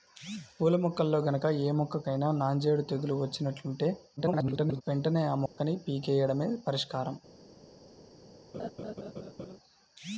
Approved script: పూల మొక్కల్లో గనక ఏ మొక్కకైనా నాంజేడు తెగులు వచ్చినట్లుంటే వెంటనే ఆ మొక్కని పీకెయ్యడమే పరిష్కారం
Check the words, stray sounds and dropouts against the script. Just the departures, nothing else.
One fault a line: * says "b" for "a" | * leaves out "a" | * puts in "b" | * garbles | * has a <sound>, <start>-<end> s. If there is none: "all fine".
* garbles
* has a dropout, 5.5-5.6 s
* has a laugh, 8.5-9.6 s